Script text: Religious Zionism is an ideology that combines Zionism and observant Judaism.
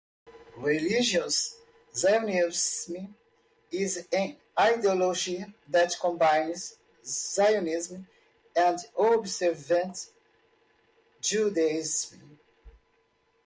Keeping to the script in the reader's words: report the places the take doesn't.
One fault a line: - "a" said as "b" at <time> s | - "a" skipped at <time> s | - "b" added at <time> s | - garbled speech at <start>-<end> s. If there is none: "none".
none